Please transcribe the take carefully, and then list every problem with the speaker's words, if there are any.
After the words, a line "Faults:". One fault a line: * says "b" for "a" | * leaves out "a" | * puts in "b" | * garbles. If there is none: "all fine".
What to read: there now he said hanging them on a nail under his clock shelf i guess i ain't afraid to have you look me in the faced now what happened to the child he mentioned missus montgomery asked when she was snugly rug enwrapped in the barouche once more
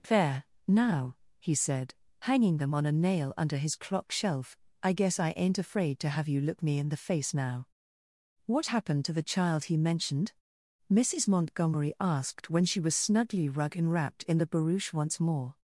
there now he said hanging them on a nail under his clock shelf i guess i ain't afraid to have you look me in the face now what happened to the child he mentioned missus montgomery asked when she was snugly rug enwrapped in the barouche once more
Faults:
* says "face" for "faced"